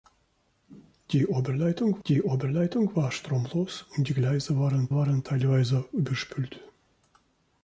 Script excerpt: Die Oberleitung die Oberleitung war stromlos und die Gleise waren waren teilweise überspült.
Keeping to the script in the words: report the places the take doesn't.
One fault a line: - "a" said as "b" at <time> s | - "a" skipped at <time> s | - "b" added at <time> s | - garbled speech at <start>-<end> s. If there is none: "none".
none